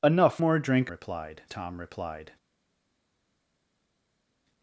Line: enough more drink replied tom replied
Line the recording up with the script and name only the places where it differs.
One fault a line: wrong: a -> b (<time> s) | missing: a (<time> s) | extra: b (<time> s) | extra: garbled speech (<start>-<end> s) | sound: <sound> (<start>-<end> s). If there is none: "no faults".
no faults